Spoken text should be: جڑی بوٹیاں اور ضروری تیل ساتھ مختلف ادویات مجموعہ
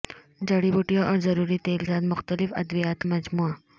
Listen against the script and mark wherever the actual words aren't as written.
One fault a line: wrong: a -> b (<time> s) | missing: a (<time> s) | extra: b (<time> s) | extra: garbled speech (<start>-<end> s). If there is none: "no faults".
no faults